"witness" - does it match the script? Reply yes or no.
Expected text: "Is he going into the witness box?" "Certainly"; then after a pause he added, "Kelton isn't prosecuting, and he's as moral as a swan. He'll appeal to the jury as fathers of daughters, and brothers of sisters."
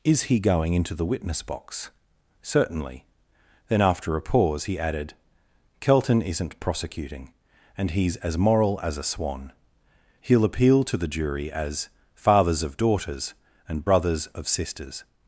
yes